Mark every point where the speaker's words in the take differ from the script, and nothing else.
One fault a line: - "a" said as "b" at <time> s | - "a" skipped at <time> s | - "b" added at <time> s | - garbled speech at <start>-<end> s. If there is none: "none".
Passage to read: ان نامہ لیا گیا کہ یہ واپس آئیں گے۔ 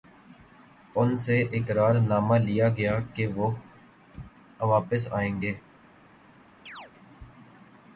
- "سے اقرار" added at 1.2 s
- "یہ" said as "وہ" at 3.4 s